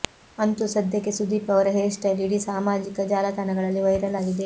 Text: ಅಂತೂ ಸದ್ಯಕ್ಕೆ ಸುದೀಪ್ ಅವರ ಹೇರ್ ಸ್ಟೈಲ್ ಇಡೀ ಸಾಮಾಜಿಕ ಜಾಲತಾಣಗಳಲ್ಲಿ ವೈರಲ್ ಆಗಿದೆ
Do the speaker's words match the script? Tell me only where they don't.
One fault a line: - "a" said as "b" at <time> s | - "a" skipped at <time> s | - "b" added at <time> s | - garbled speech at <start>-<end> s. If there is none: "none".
none